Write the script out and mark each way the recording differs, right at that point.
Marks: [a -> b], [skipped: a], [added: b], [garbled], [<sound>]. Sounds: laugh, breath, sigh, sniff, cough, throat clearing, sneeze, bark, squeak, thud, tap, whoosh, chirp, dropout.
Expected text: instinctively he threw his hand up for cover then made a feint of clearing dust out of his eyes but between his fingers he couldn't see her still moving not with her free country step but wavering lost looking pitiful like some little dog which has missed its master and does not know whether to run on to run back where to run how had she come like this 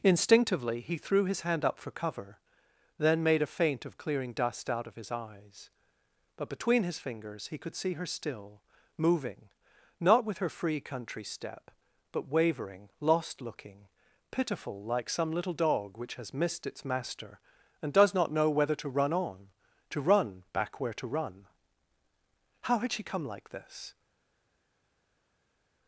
instinctively he threw his hand up for cover then made a feint of clearing dust out of his eyes but between his fingers he [couldn't -> could] see her still moving not with her free country step but wavering lost looking pitiful like some little dog which has missed its master and does not know whether to run on to run back where to run how had she come like this